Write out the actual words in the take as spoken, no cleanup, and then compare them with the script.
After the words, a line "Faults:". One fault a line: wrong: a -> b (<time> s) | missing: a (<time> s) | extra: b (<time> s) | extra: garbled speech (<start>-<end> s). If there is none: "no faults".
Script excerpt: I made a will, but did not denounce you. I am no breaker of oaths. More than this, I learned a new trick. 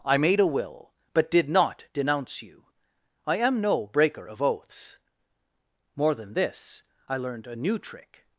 I made a will, but did not denounce you. I am no breaker of oaths. More than this, I learned a new trick.
Faults:
no faults